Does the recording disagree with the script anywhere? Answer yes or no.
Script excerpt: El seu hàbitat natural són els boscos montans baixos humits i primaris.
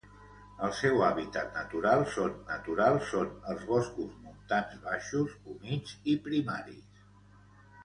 yes